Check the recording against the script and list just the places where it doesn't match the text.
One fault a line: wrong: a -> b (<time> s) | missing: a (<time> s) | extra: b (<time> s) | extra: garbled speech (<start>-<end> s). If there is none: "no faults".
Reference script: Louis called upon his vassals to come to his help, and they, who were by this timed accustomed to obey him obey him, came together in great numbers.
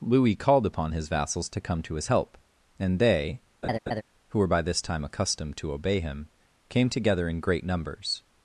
wrong: timed -> time (4.8 s)
missing: obey him (6.3 s)